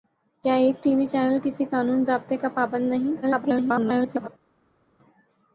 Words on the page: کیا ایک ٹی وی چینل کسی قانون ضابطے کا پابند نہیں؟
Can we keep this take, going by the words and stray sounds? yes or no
no